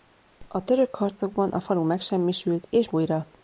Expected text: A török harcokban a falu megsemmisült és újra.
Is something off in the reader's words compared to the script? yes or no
no